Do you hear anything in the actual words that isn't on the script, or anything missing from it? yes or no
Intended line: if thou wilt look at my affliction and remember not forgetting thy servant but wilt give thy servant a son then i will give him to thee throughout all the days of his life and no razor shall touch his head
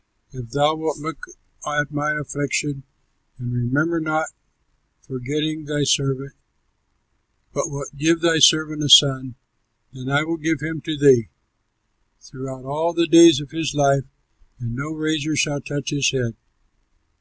no